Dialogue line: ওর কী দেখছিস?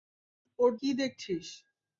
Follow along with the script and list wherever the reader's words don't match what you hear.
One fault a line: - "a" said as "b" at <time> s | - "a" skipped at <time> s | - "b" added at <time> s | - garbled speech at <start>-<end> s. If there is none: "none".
none